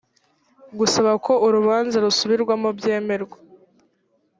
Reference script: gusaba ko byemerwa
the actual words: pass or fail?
fail